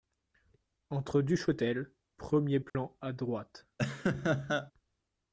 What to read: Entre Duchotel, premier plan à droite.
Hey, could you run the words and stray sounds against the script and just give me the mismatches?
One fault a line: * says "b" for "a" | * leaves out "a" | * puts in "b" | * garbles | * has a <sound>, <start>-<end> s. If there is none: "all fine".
* has a dropout, 2.7-2.7 s
* has a laugh, 3.8-4.7 s